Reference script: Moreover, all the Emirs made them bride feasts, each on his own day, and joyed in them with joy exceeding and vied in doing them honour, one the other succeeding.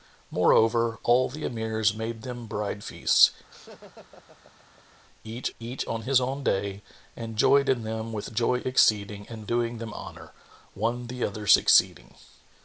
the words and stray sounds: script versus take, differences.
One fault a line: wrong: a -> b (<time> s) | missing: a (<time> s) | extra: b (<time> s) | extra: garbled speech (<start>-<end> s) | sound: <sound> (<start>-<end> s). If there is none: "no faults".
sound: laugh (3.5-5.0 s)
extra: each (5.6 s)
missing: vied in (9.5 s)